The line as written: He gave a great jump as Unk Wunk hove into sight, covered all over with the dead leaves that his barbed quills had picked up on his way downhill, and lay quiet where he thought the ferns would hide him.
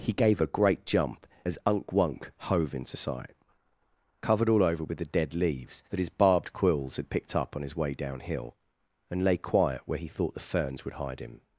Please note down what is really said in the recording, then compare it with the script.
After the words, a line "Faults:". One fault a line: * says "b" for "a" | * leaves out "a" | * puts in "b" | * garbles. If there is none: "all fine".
He gave a great jump as Unk Wunk hove into sight, covered all over with the dead leaves that his barbed quills had picked up on his way downhill, and lay quiet where he thought the ferns would hide him.
Faults:
all fine